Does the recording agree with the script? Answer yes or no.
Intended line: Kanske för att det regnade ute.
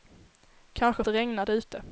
no